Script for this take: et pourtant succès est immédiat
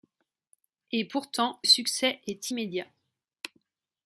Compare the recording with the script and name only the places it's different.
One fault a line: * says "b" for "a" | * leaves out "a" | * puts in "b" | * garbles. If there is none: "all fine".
all fine